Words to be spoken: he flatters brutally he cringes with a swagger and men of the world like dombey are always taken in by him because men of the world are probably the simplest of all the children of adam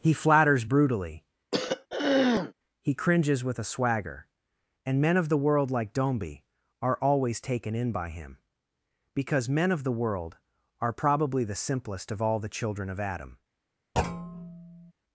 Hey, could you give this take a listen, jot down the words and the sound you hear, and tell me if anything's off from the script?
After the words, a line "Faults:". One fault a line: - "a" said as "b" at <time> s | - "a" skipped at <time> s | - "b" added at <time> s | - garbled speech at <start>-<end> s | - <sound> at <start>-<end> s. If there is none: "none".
he flatters brutally he cringes with a swagger and men of the world like dombey are always taken in by him because men of the world are probably the simplest of all the children of adam
Faults:
- throat clearing at 1.5-2.5 s
- thud at 14.0-14.9 s